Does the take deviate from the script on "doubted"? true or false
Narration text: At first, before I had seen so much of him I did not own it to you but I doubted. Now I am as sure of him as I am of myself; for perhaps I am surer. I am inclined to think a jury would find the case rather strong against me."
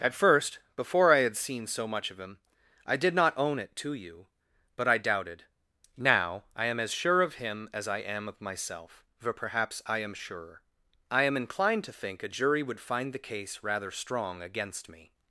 false